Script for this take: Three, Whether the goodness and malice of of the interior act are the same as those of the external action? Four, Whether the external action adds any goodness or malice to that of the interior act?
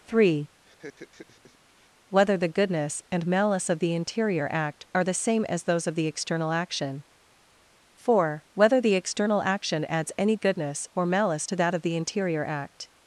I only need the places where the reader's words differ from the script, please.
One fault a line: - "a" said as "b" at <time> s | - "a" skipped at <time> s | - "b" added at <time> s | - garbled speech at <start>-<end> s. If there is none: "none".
- "of" skipped at 3.8 s